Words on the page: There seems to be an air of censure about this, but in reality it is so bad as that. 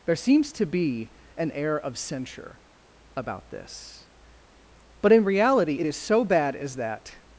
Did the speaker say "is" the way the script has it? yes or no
yes